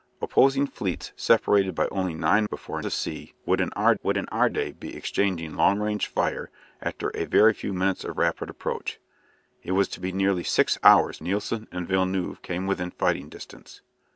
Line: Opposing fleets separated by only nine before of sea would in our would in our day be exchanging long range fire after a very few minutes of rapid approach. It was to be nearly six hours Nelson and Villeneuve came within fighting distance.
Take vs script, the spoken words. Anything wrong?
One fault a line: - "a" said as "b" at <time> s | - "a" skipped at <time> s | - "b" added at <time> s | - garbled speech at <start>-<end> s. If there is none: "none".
none